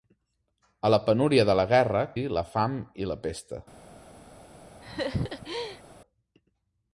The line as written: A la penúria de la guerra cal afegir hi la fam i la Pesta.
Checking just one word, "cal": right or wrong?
wrong